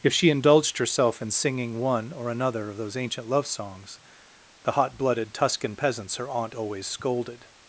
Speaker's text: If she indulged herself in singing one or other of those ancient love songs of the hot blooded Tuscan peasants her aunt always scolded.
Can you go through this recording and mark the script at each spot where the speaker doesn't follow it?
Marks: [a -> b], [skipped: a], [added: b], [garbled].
If she indulged herself in singing one or [other -> another] of those ancient love songs [skipped: of] the hot blooded Tuscan peasants her aunt always scolded.